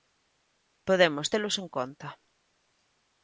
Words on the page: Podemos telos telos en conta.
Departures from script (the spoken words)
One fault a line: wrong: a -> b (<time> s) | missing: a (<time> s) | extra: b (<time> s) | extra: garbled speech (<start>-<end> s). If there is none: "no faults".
missing: telos (1.6 s)